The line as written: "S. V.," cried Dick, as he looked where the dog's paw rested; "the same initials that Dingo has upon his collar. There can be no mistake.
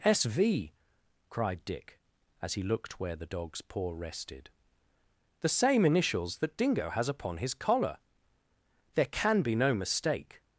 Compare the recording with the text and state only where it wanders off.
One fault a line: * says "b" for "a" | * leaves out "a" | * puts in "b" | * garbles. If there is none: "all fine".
all fine